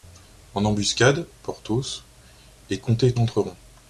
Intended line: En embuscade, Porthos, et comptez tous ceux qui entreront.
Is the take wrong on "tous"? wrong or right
wrong